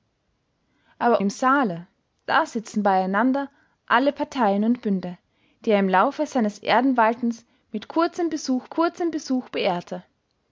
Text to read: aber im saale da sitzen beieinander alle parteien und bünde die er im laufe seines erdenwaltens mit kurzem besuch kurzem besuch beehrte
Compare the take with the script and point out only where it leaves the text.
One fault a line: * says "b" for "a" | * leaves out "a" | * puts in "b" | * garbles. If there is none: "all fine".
all fine